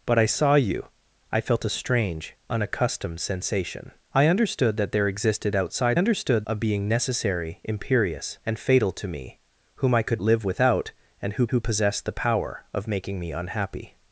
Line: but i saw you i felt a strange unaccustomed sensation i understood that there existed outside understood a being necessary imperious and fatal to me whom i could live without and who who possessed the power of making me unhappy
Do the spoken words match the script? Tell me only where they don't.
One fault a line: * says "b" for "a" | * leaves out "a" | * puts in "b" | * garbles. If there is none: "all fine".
all fine